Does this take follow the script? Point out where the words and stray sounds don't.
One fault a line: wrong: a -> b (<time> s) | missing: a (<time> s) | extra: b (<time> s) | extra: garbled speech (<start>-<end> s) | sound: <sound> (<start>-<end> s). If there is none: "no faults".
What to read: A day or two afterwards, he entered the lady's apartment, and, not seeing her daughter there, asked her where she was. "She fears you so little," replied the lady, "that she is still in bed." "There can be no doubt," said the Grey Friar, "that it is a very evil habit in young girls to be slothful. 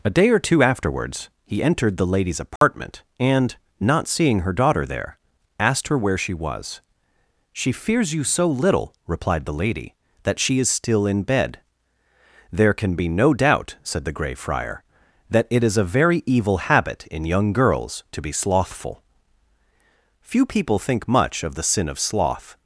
sound: dropout (2.6-2.6 s)
extra: Few people think much of the sin of sloth (20.2 s)